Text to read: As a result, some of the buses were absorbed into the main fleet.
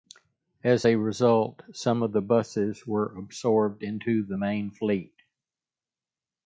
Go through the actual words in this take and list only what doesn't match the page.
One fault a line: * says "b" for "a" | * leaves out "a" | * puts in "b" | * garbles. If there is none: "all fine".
all fine